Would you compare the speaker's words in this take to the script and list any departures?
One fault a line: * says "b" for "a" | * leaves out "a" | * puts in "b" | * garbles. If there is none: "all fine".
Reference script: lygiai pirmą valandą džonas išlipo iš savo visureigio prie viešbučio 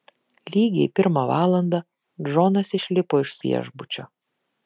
* leaves out "savo visureigio prie"